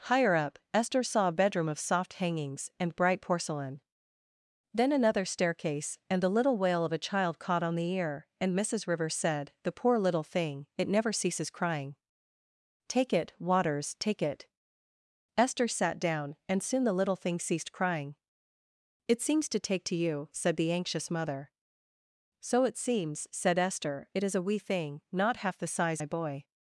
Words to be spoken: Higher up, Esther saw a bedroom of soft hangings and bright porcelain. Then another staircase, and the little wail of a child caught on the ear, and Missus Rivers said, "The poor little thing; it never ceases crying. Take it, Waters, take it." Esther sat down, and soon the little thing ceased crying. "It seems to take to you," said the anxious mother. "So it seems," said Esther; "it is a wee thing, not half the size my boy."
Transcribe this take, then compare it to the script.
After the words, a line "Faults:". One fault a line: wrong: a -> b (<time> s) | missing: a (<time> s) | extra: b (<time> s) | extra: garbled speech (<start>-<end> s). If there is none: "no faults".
Higher up, Esther saw a bedroom of soft hangings and bright porcelain. Then another staircase, and the little wail of a child caught on the ear, and Missus Rivers said, "The poor little thing; it never ceases crying. Take it, Waters, take it." Esther sat down, and soon the little thing ceased crying. "It seems to take to you," said the anxious mother. "So it seems," said Esther; "it is a wee thing, not half the size my boy."
Faults:
no faults